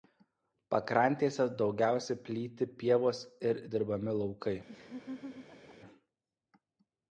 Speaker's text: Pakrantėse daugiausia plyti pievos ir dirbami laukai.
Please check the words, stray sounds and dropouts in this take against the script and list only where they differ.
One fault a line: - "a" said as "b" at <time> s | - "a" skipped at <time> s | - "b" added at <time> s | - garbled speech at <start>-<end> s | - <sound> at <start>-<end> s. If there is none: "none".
- laugh at 4.7-5.8 s